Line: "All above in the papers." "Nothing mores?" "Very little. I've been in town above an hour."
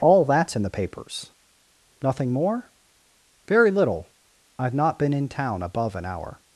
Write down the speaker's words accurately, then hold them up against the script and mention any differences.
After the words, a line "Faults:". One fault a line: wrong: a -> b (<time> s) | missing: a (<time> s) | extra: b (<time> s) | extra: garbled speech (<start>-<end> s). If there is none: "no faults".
"All that's in the papers." "Nothing more?" "Very little. I've not been in town above an hour."
Faults:
wrong: above -> that's (0.2 s)
wrong: mores -> more (2.3 s)
extra: not (4.7 s)